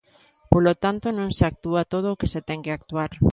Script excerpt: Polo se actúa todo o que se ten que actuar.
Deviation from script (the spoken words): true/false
true